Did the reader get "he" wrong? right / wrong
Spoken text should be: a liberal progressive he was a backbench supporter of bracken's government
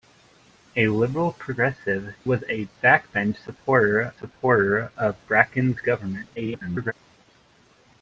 wrong